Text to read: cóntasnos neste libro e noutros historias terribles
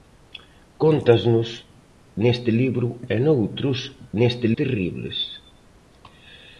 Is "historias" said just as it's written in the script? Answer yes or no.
no